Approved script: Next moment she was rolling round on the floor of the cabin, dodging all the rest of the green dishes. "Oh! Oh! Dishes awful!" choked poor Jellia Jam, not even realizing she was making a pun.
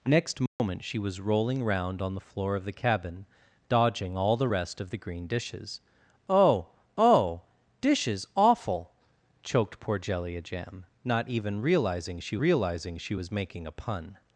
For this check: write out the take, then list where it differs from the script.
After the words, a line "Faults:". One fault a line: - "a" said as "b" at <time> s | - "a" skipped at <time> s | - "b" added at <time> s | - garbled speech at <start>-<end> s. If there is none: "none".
Next moment she was rolling round on the floor of the cabin, dodging all the rest of the green dishes. "Oh! Oh! Dishes awful!" choked poor Jellia Jam, not even realizing she realizing she was making a pun.
Faults:
- "realizing she" added at 12.4 s